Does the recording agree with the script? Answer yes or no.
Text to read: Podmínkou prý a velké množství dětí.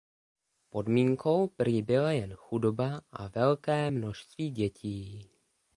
no